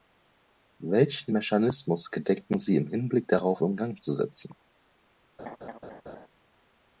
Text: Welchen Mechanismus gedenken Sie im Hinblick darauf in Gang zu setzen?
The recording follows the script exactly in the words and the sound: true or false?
false